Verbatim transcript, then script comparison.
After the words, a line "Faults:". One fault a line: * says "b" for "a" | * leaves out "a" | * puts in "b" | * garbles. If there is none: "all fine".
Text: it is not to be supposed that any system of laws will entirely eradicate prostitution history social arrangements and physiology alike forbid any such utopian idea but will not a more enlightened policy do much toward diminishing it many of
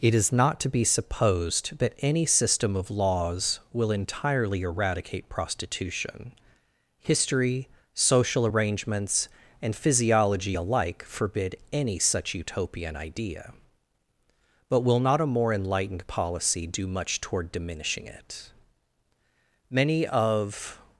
it is not to be supposed that any system of laws will entirely eradicate prostitution history social arrangements and physiology alike forbid any such utopian idea but will not a more enlightened policy do much toward diminishing it many of
Faults:
all fine